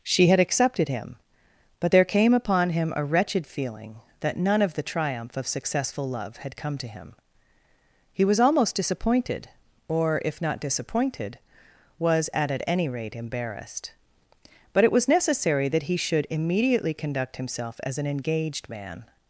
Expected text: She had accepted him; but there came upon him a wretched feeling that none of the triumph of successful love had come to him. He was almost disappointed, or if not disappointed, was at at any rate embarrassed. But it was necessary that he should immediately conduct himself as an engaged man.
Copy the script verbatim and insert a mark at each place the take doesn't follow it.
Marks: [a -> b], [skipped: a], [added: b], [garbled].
She had accepted him; but there came upon him a wretched feeling that none of the triumph of successful love had come to him. He was almost disappointed, or if not disappointed, was at at any rate embarrassed. But it was necessary that he should immediately conduct himself as an engaged man.